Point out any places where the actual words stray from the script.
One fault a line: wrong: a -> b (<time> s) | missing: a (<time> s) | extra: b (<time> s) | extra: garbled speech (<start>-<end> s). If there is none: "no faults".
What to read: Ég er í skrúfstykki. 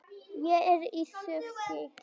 no faults